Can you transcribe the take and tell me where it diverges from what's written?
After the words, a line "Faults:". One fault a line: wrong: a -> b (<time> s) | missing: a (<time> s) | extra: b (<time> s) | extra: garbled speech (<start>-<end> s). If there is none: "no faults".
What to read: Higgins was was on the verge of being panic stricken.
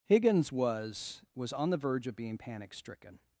Higgins was was on the verge of being panic stricken.
Faults:
no faults